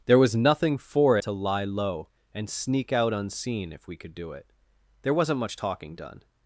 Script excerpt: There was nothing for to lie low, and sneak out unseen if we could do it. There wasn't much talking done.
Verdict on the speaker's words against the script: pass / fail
pass